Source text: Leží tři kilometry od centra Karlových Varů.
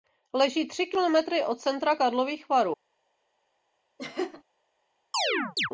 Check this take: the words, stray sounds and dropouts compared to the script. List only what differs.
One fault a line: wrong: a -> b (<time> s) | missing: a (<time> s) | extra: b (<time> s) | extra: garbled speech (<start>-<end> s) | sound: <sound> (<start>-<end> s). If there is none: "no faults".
sound: laugh (4.0-4.4 s)
sound: chirp (5.1-5.7 s)